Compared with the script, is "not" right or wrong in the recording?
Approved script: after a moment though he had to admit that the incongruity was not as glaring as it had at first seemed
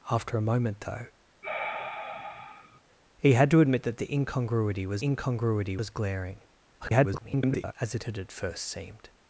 wrong